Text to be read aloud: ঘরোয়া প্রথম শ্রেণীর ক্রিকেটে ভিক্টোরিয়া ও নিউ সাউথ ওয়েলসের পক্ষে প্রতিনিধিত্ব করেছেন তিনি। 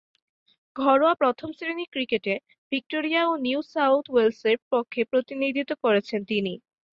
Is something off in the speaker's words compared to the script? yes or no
no